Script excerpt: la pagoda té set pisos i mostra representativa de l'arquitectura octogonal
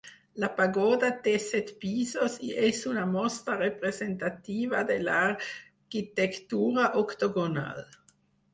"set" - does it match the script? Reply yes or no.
yes